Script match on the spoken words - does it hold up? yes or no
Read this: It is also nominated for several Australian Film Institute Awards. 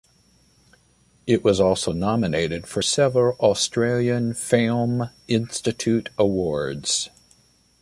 no